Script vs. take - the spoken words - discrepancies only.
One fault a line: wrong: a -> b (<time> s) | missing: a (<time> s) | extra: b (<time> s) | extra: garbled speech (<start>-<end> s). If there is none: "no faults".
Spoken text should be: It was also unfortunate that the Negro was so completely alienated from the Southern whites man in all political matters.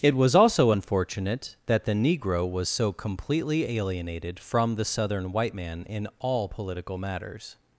wrong: whites -> white (5.3 s)